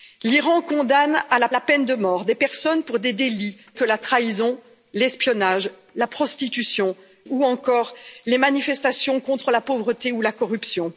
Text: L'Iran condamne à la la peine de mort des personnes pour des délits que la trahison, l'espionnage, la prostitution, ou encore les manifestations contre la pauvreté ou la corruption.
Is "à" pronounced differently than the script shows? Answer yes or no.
no